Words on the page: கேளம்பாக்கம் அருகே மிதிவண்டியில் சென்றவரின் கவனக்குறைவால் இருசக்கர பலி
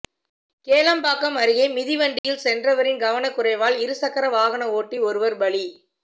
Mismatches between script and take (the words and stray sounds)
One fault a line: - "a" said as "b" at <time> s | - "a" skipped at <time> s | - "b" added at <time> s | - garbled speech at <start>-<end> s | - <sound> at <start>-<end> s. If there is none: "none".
- dropout at 2.2-2.2 s
- "வாகன ஓட்டி ஒருவர்" added at 4.3 s